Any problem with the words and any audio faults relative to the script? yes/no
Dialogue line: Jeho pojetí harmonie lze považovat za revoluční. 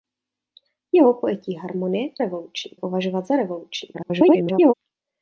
yes